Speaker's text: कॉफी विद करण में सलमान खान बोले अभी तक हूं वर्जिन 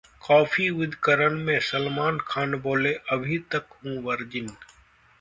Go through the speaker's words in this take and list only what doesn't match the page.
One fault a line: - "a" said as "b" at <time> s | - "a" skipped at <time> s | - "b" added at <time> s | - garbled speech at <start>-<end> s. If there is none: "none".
none